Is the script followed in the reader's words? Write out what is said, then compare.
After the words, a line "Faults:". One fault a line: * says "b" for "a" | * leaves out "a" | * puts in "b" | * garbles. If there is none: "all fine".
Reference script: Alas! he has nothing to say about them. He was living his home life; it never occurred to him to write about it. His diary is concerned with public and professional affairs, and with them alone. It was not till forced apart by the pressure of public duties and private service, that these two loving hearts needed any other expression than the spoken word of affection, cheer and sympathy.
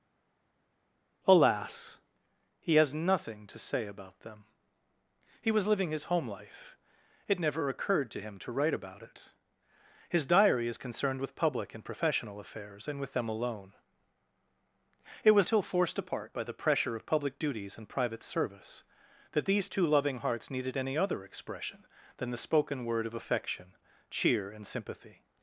Alas! he has nothing to say about them. He was living his home life; it never occurred to him to write about it. His diary is concerned with public and professional affairs, and with them alone. It was till forced apart by the pressure of public duties and private service, that these two loving hearts needed any other expression than the spoken word of affection, cheer and sympathy.
Faults:
* leaves out "not"